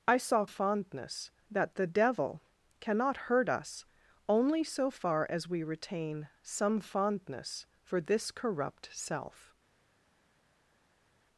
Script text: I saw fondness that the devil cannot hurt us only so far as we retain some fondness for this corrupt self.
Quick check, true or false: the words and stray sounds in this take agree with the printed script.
true